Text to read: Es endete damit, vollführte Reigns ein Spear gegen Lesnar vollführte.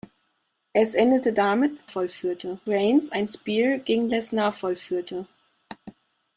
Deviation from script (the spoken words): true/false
false